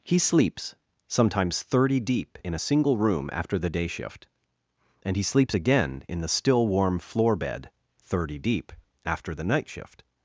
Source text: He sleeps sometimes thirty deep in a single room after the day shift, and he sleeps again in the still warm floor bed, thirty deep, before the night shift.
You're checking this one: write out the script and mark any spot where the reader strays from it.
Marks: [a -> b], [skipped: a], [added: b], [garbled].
He sleeps sometimes thirty deep in a single room after the day shift, and he sleeps again in the still warm floor bed, thirty deep, [before -> after] the night shift.